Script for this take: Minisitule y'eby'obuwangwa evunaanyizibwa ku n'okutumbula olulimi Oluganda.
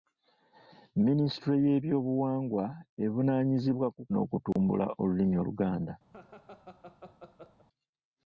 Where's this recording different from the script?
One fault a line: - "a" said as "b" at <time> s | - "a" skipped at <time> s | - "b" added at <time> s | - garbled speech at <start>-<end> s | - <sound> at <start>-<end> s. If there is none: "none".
- dropout at 4.5-4.6 s
- laugh at 6.1-7.7 s